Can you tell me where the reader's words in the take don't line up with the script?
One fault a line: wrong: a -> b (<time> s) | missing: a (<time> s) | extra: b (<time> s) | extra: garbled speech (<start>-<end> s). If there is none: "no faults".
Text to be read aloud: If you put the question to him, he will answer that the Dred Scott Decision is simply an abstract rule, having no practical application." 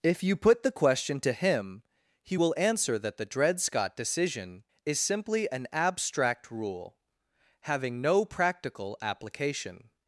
no faults